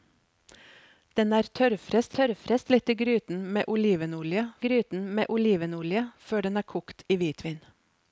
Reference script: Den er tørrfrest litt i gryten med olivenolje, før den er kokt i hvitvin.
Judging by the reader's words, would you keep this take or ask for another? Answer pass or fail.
fail